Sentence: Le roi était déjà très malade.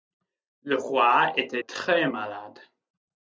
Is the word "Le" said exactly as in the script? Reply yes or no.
yes